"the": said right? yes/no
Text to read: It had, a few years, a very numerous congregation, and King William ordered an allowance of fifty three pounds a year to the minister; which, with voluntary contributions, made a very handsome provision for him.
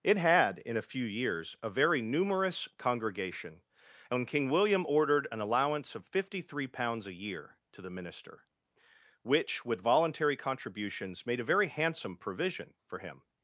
yes